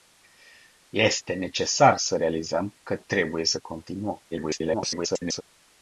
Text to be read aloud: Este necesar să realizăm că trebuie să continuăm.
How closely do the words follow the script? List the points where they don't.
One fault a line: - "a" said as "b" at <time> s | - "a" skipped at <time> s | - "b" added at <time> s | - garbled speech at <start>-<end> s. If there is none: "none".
- garbled speech at 4.3-5.4 s